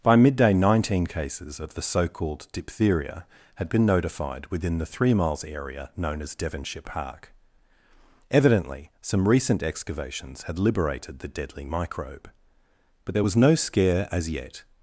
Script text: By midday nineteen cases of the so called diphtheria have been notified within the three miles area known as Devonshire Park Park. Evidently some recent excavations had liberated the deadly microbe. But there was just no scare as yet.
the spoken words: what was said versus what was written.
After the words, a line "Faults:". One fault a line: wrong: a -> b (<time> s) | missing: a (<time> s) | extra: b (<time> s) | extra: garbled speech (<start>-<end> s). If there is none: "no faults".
By midday nineteen cases of the so called diphtheria had been notified within the three miles area known as Devonshire Park. Evidently some recent excavations had liberated the deadly microbe. But there was no scare as yet.
Faults:
wrong: have -> had (3.5 s)
missing: Park (7.3 s)
missing: just (13.4 s)